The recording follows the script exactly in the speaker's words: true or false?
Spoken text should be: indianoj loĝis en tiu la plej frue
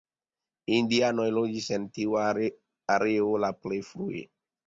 false